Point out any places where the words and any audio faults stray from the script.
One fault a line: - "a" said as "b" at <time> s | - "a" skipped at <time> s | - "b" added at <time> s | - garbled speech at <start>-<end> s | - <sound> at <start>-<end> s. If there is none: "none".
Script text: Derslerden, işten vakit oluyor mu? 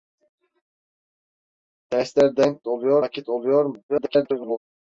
- "işten" said as "oluyor" at 2.7 s
- garbled speech at 3.9-4.6 s